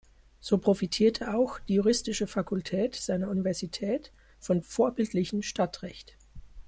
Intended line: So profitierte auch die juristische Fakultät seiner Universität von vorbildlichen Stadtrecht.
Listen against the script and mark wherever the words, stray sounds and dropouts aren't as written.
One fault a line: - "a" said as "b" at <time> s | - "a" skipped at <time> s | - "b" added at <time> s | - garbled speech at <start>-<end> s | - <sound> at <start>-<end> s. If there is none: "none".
none